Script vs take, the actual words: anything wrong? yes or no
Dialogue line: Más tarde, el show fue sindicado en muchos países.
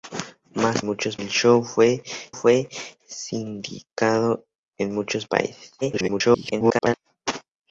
yes